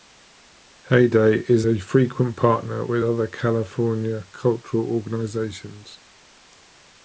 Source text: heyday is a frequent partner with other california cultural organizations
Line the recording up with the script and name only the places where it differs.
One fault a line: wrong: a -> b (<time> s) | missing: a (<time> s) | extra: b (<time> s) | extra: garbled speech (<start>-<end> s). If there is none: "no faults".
no faults